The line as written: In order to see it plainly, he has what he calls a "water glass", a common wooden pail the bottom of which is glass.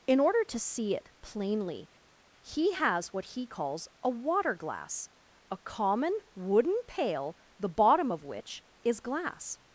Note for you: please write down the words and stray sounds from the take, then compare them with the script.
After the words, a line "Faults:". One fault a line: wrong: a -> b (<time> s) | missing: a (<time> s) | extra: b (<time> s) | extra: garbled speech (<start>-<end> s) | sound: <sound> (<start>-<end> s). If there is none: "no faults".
In order to see it plainly, he has what he calls a "water glass", a common wooden pail the bottom of which is glass.
Faults:
no faults